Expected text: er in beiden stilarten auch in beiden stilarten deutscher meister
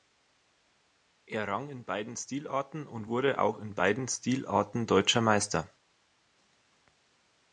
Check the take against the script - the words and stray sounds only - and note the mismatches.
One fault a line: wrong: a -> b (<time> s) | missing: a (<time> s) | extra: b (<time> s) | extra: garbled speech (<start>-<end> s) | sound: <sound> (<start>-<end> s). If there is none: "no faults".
extra: rang (1.5 s)
extra: und wurde (2.9 s)